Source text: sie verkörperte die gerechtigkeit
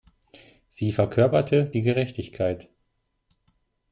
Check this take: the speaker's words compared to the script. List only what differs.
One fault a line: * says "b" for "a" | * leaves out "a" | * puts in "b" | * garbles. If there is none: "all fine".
all fine